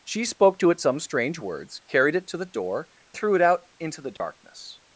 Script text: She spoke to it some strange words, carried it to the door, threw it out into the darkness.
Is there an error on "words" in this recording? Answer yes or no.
no